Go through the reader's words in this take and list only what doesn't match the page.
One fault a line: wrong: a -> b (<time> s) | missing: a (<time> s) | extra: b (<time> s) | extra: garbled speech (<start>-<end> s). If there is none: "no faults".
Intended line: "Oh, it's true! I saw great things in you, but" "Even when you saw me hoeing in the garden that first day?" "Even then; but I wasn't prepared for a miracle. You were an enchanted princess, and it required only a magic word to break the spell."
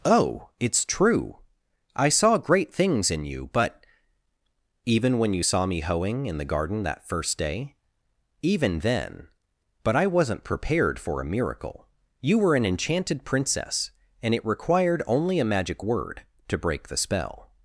no faults